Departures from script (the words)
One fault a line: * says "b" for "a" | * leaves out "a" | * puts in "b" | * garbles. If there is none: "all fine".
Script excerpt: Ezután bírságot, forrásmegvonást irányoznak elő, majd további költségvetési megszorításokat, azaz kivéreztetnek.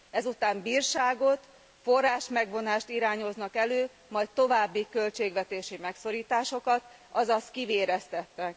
all fine